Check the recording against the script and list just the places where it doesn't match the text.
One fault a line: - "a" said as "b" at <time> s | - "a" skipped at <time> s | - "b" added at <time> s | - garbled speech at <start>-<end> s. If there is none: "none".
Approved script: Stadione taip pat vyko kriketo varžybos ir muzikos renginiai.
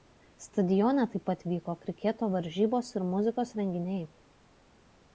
none